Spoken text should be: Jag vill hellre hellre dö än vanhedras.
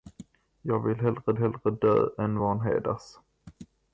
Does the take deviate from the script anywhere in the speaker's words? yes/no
no